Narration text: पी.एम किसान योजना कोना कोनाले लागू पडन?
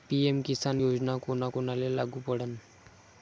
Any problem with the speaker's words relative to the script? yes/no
no